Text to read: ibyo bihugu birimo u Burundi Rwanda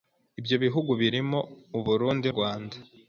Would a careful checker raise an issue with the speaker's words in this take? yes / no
no